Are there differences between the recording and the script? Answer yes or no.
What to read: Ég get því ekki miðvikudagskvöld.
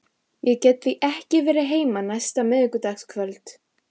yes